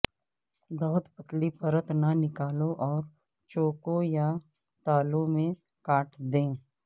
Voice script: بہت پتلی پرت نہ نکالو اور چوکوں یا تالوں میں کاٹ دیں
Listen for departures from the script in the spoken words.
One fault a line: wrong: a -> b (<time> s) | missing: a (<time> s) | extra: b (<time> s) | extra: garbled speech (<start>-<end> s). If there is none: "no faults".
no faults